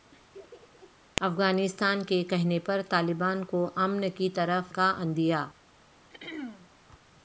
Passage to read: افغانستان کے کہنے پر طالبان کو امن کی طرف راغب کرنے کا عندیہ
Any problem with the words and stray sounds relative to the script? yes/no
yes